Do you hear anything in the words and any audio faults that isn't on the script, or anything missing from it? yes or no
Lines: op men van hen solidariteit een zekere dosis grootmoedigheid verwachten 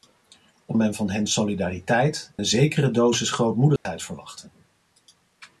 yes